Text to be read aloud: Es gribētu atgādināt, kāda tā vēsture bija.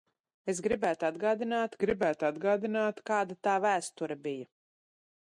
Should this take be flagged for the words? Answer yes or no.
yes